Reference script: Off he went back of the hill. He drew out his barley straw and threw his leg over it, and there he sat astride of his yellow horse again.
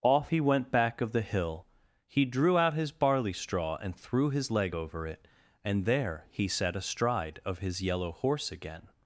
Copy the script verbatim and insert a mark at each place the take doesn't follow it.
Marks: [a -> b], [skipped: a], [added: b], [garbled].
Off he went back of the hill. He drew out his barley straw and threw his leg over it, and there he sat astride of his yellow horse again.